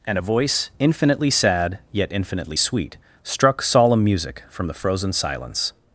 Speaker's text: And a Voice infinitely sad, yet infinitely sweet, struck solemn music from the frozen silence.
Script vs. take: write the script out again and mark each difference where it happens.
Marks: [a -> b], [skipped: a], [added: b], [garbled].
And a Voice infinitely sad, yet infinitely sweet, struck solemn music from the frozen silence.